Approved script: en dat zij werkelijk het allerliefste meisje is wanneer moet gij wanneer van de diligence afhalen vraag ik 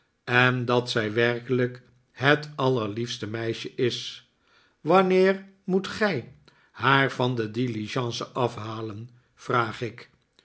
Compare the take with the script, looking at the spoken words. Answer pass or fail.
fail